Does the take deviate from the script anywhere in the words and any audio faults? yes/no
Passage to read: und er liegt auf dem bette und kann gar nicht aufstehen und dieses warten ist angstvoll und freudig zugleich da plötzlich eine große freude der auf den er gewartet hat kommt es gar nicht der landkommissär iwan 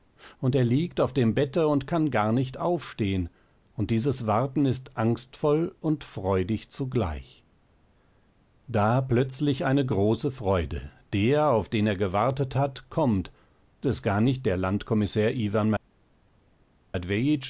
no